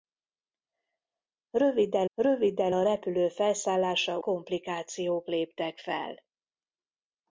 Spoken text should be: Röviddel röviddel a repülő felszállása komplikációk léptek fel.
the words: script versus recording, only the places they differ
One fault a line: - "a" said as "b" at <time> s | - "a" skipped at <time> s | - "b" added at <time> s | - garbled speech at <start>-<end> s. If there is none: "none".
none